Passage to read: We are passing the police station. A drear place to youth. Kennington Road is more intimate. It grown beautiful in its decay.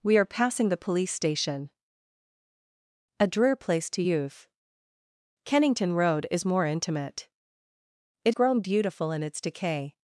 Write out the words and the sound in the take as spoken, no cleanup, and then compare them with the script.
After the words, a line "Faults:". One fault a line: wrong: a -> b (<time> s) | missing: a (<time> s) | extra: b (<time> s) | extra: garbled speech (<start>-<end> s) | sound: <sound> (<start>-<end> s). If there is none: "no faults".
We are passing the police station. A drear place to youth. Kennington Road is more intimate. It grown beautiful in its decay.
Faults:
no faults